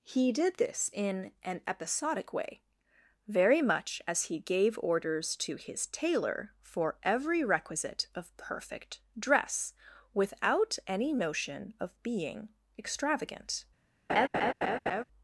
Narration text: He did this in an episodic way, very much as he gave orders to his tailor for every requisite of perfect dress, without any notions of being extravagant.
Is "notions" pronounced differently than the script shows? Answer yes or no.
yes